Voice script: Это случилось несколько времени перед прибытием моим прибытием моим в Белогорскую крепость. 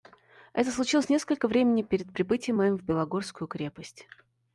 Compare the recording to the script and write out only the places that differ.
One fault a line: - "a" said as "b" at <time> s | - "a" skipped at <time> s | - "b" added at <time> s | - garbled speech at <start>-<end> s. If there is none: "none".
- "прибытием моим" skipped at 2.8 s